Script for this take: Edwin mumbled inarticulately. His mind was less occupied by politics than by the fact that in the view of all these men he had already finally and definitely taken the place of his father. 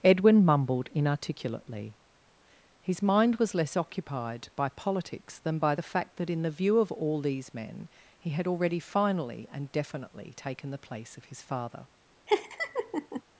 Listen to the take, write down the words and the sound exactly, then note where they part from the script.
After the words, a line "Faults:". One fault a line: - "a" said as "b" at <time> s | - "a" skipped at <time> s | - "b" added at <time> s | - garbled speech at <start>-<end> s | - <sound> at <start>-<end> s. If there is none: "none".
Edwin mumbled inarticulately. His mind was less occupied by politics than by the fact that in the view of all these men he had already finally and definitely taken the place of his father.
Faults:
- laugh at 12.3-13.2 s